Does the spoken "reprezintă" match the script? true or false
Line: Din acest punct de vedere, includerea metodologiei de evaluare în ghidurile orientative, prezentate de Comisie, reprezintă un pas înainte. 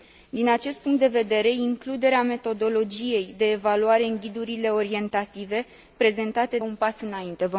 false